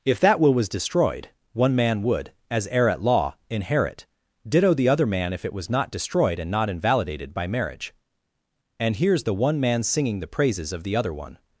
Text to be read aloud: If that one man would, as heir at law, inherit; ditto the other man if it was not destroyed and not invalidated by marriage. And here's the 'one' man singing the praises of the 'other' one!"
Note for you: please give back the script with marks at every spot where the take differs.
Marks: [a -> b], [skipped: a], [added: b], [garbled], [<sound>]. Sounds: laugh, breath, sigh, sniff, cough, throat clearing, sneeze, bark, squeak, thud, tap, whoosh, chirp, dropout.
If that [added: will was destroyed] one man would, as heir at law, inherit; ditto the other man if it was not destroyed and not invalidated by marriage. And here's the 'one' man singing the praises of the 'other' one!"